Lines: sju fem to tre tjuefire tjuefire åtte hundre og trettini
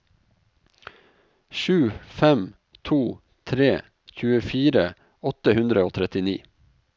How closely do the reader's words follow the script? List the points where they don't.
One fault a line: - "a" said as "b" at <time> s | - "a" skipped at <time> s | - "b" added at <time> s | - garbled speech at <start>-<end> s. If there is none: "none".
- "tjuefire" skipped at 4.9 s